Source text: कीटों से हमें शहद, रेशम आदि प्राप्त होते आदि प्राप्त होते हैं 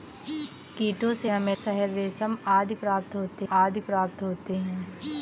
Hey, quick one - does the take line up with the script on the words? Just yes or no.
yes